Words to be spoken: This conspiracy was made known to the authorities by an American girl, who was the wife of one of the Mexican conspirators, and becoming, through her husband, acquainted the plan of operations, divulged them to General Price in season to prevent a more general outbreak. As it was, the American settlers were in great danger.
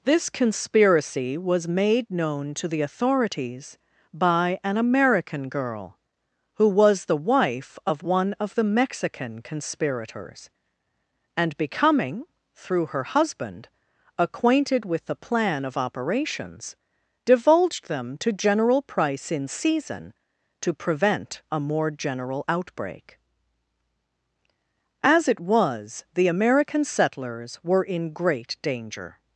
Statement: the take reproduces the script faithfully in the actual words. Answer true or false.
false